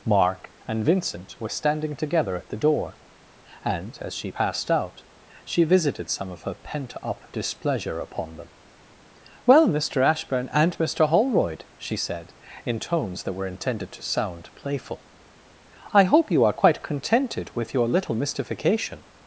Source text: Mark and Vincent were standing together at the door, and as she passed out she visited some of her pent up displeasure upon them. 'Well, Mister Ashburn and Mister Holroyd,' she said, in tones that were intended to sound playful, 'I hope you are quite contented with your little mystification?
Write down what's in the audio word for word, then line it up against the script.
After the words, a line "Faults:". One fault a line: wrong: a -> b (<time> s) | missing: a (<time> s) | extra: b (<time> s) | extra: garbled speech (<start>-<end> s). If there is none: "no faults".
Mark and Vincent were standing together at the door, and as she passed out she visited some of her pent up displeasure upon them. 'Well, Mister Ashburn and Mister Holroyd,' she said, in tones that were intended to sound playful, 'I hope you are quite contented with your little mystification?
Faults:
no faults